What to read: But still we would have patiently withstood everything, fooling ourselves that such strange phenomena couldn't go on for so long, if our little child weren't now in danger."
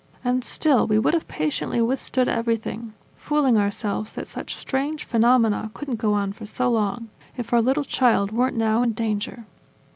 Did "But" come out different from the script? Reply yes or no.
yes